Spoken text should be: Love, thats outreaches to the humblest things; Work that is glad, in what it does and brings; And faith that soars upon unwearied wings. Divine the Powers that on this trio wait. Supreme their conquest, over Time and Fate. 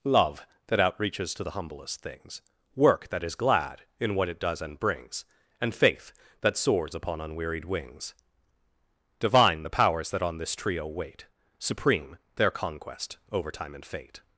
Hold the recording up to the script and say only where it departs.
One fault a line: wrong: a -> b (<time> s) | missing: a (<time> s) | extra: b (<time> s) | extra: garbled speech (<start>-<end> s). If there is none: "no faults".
wrong: thats -> that (0.7 s)